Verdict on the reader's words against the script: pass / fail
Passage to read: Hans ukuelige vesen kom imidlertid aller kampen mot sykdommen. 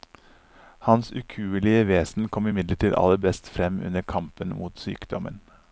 fail